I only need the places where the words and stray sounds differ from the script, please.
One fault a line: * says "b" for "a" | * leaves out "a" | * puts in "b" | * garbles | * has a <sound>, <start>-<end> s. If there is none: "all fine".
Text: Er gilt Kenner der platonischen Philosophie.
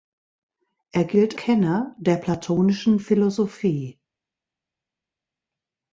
all fine